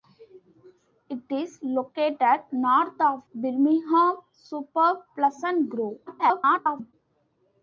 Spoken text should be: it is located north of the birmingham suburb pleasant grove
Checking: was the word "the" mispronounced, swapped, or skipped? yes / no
yes